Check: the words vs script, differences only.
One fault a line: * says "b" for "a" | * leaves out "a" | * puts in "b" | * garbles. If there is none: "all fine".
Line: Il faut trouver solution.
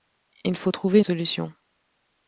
all fine